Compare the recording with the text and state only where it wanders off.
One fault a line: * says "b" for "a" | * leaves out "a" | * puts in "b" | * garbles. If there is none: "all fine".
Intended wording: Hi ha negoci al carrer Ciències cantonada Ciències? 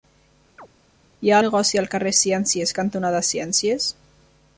all fine